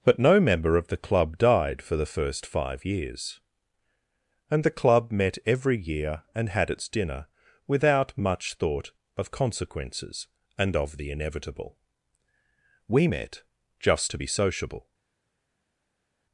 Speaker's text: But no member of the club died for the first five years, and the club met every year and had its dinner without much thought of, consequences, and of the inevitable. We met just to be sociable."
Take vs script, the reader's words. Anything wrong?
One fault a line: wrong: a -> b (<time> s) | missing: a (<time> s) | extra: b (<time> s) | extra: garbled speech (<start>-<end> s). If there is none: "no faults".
no faults